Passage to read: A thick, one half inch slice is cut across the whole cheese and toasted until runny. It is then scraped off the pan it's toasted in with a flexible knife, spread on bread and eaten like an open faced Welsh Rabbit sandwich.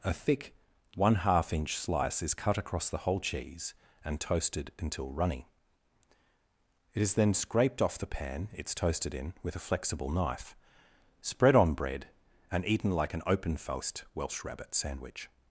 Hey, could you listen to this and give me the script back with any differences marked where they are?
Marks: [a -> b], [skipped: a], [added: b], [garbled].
A thick, one half inch slice is cut across the whole cheese and toasted until runny. It is then scraped off the pan it's toasted in with a flexible knife, spread on bread and eaten like an open faced Welsh Rabbit sandwich.